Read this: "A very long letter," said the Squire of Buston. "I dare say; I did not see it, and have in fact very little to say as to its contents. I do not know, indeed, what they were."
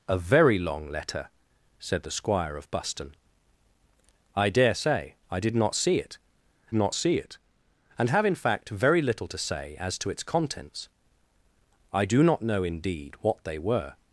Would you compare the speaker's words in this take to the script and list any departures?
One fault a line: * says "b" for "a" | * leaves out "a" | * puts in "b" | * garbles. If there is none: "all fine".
* puts in "not see it"